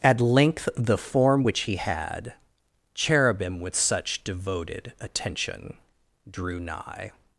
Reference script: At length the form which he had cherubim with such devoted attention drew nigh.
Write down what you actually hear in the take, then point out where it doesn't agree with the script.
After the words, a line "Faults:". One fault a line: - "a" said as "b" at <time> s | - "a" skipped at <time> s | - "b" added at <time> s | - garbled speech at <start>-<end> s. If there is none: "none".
At length the form which he had cherubim with such devoted attention drew nigh.
Faults:
none